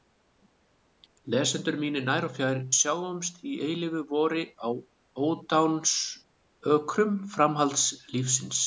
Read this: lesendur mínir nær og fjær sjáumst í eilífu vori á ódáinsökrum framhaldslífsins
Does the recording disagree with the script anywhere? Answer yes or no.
no